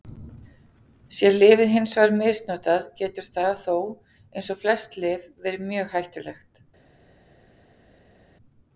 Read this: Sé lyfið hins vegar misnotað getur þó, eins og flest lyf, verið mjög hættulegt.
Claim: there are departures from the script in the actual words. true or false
true